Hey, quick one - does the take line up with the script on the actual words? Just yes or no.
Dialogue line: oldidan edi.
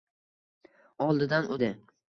yes